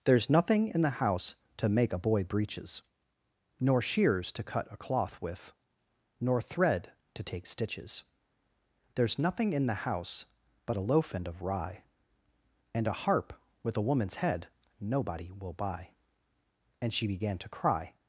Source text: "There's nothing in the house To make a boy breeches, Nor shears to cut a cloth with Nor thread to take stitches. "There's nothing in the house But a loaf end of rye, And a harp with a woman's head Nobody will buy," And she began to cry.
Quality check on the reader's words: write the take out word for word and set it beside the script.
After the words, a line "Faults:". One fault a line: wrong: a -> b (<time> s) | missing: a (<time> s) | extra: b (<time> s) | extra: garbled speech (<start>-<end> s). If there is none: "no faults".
"There's nothing in the house To make a boy breeches, Nor shears to cut a cloth with Nor thread to take stitches. "There's nothing in the house But a loaf end of rye, And a harp with a woman's head Nobody will buy," And she began to cry.
Faults:
no faults